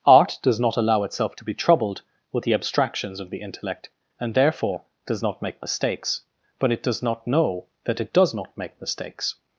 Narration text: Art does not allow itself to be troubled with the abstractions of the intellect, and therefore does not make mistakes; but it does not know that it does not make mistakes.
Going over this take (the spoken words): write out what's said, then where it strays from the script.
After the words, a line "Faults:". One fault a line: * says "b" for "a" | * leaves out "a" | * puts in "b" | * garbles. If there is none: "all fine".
Art does not allow itself to be troubled with the abstractions of the intellect, and therefore does not make mistakes; but it does not know that it does not make mistakes.
Faults:
all fine